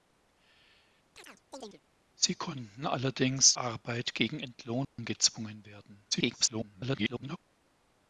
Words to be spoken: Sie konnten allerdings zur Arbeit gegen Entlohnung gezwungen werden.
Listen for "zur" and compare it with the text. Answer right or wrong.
wrong